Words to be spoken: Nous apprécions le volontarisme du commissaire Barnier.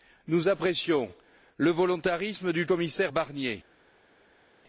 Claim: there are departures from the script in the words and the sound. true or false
false